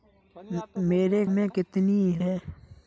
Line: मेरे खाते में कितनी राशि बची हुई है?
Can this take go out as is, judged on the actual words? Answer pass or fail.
fail